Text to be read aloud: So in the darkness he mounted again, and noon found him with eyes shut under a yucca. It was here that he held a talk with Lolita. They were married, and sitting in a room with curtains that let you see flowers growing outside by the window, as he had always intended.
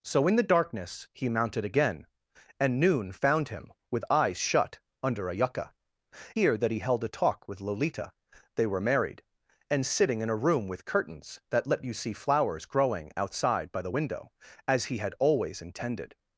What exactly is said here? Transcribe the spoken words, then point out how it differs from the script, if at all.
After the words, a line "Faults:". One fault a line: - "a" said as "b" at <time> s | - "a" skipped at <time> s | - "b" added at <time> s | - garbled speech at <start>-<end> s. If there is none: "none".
So in the darkness he mounted again, and noon found him with eyes shut under a yucca. Here that he held a talk with Lolita. They were married, and sitting in a room with curtains that let you see flowers growing outside by the window, as he had always intended.
Faults:
- "It was" skipped at 5.8 s